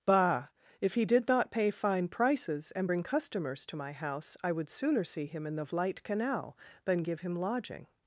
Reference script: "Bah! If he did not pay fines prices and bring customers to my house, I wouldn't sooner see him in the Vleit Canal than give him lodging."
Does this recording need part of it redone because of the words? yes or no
yes